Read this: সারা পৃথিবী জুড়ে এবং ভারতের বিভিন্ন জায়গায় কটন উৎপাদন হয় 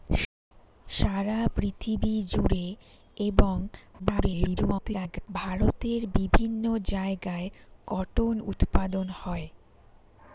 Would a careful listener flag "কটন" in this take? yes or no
no